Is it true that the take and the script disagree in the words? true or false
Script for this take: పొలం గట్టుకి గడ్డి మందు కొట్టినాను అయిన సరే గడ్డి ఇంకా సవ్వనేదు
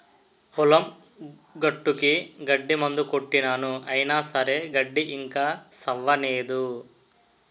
false